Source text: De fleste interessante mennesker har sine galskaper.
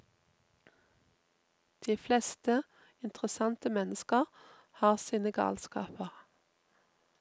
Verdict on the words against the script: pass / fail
pass